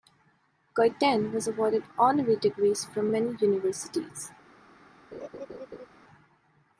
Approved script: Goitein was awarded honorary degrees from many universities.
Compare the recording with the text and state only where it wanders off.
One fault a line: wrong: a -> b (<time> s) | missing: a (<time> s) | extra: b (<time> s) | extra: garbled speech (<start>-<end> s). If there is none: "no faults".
no faults